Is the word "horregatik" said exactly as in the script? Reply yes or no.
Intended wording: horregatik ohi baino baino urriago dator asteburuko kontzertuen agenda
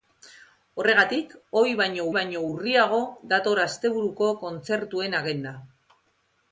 yes